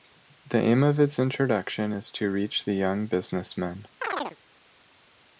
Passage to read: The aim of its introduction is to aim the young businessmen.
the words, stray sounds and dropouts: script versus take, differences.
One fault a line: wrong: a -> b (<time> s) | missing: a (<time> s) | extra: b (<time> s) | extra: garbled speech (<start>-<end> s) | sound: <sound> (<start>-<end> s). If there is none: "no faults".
wrong: aim -> reach (2.3 s)
sound: chirp (4.0-4.4 s)